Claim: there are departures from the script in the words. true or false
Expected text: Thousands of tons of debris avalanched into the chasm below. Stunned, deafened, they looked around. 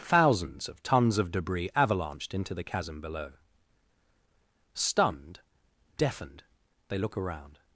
true